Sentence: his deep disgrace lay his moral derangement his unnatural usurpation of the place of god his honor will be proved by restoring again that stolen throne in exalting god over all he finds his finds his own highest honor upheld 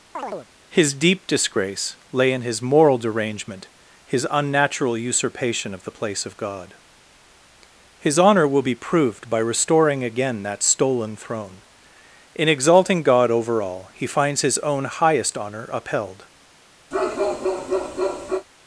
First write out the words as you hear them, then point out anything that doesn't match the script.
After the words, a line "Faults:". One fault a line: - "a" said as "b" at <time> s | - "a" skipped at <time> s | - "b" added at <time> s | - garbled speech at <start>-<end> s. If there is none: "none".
his deep disgrace lay in his moral derangement his unnatural usurpation of the place of god his honor will be proved by restoring again that stolen throne in exalting god over all he finds his own highest honor upheld
Faults:
- "in" added at 2.3 s
- "finds his" skipped at 14.6 s